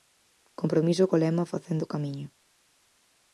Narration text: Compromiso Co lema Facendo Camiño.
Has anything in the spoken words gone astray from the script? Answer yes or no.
no